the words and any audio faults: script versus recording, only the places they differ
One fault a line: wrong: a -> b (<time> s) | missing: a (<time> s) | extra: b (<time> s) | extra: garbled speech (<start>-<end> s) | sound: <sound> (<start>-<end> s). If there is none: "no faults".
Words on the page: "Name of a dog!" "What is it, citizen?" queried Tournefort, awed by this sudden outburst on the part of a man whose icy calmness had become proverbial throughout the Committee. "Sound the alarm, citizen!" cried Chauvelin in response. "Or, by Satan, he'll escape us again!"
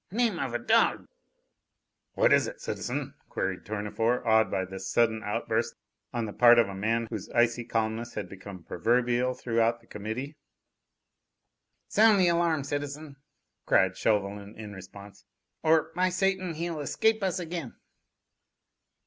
no faults